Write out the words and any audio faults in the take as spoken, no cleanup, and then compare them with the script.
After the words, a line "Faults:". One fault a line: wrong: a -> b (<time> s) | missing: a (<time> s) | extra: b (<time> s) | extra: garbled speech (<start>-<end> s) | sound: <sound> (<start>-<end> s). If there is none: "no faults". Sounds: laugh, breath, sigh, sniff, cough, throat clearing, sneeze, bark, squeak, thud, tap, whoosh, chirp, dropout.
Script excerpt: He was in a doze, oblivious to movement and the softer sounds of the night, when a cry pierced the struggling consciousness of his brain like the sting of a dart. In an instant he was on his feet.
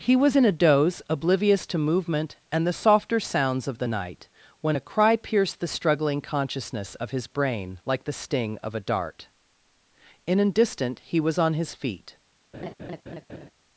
He was in a doze, oblivious to movement and the softer sounds of the night, when a cry pierced the struggling consciousness of his brain like the sting of a dart. In an distant he was on his feet.
Faults:
wrong: instant -> distant (10.5 s)
sound: laugh (12.5-13.5 s)